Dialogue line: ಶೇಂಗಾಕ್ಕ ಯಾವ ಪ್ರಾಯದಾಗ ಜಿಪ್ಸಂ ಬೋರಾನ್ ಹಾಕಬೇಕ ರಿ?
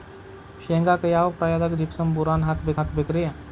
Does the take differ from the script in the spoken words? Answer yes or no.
yes